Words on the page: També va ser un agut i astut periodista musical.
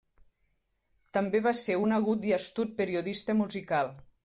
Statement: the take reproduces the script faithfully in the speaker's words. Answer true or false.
true